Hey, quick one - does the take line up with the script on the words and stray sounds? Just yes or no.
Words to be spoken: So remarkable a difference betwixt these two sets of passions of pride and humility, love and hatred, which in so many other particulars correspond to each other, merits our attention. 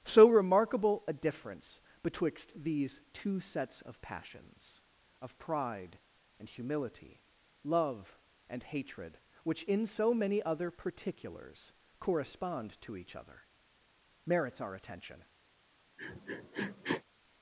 no